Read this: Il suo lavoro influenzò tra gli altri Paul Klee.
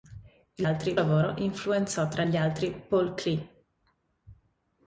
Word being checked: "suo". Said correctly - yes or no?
no